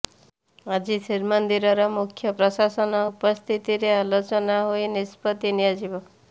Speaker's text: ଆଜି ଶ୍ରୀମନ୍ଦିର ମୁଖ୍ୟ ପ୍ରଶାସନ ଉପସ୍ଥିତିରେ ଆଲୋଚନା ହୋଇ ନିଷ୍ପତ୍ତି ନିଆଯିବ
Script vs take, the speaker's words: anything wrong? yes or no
no